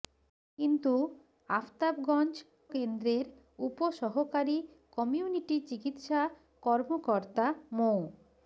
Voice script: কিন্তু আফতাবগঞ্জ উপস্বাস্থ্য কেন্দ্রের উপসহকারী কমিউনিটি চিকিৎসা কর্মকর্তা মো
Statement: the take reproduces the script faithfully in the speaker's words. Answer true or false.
false